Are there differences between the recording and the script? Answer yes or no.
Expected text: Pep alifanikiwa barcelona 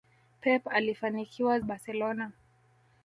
no